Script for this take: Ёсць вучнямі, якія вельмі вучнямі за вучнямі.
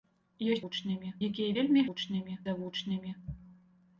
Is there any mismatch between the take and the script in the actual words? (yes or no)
no